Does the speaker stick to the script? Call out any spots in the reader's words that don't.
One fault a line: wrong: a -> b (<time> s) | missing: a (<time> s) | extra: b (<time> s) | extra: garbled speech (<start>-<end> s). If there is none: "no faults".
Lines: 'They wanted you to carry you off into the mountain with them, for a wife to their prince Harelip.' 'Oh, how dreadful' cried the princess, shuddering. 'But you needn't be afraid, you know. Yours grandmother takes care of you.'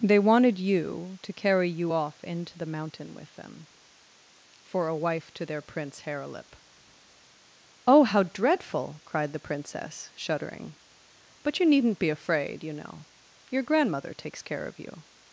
wrong: Yours -> Your (13.5 s)